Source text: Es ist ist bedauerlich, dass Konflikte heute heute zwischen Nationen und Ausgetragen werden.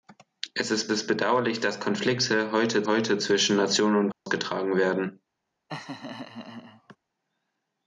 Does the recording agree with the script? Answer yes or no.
yes